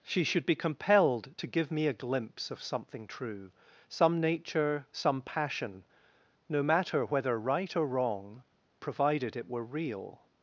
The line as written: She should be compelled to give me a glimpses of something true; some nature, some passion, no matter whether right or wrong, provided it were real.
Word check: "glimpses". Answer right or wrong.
wrong